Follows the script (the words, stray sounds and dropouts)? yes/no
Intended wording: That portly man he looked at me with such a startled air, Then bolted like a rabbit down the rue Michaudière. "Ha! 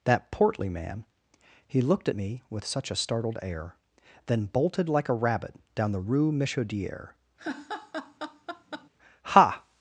no